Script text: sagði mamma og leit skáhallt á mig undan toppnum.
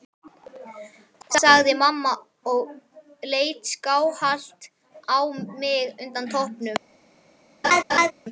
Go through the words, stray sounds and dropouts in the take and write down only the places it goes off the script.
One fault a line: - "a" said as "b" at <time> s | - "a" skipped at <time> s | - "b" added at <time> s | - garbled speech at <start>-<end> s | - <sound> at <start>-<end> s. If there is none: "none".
- laugh at 7.6-8.1 s